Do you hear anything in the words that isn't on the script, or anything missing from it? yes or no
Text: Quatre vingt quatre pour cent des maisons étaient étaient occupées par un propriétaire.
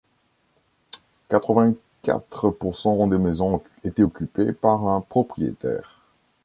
yes